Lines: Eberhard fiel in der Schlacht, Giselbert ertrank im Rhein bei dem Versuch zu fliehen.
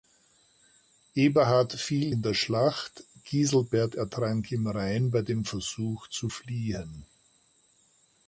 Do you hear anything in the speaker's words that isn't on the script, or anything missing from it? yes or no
no